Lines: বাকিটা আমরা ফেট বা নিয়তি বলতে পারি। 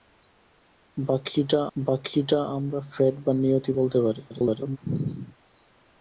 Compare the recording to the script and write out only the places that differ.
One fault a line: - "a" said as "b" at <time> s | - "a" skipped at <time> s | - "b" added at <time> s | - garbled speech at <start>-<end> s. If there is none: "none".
- "বাকিটা" added at 1.8 s
- garbled speech at 4.3-4.8 s